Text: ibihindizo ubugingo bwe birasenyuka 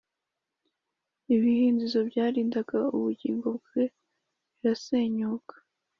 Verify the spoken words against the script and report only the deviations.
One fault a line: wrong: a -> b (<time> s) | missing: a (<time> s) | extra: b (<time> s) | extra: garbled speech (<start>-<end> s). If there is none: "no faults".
extra: byarindaga (2.1 s)